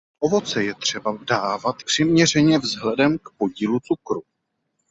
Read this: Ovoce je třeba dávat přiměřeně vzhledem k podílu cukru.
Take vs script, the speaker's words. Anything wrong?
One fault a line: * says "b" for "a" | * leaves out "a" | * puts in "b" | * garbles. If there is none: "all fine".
all fine